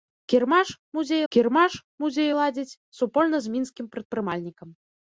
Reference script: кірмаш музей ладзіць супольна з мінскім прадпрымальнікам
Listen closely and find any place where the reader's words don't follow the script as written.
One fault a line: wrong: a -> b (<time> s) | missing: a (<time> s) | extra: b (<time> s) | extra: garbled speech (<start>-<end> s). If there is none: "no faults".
extra: кірмаш музей (1.3 s)